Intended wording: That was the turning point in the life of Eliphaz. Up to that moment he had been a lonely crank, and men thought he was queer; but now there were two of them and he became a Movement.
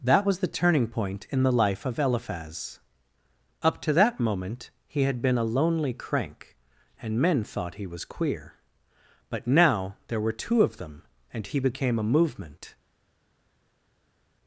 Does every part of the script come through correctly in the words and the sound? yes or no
yes